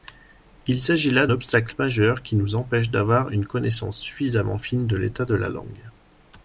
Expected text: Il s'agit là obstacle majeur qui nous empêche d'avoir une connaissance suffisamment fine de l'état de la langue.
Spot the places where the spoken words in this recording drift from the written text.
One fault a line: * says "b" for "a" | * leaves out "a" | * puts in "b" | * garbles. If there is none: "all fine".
all fine